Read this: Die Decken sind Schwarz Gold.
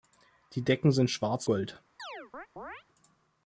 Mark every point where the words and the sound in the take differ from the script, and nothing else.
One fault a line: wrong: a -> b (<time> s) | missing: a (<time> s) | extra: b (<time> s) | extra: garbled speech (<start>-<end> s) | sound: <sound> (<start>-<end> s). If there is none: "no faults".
sound: chirp (2.0-2.8 s)